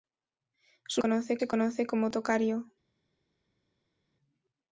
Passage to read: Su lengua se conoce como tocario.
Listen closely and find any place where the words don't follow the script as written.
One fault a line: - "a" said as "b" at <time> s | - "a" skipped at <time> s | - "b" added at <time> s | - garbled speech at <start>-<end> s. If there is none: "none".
- "lengua" said as "conoce" at 1.0 s